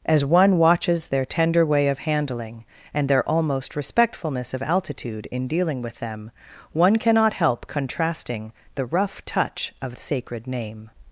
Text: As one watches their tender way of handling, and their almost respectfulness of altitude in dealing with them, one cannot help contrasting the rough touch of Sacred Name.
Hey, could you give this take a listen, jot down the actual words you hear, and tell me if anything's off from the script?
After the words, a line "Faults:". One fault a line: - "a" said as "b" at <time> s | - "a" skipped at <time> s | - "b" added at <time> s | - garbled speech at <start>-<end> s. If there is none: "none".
As one watches their tender way of handling, and their almost respectfulness of altitude in dealing with them, one cannot help contrasting the rough touch of Sacred Name.
Faults:
none